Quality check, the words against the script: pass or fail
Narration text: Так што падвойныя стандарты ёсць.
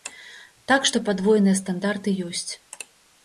pass